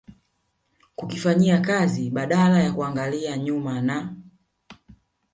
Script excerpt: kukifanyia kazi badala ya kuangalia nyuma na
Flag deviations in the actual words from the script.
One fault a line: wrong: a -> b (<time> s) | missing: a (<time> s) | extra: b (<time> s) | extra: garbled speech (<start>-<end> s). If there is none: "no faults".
no faults